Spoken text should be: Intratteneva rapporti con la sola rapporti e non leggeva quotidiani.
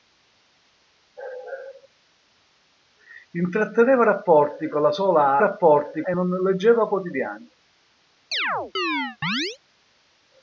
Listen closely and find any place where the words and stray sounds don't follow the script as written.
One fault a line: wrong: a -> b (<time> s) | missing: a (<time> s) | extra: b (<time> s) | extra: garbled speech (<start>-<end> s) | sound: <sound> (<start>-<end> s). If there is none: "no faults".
sound: chirp (8.3-9.6 s)